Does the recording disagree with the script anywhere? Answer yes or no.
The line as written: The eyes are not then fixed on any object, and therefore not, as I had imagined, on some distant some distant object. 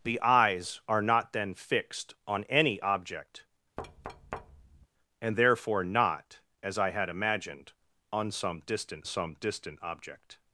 no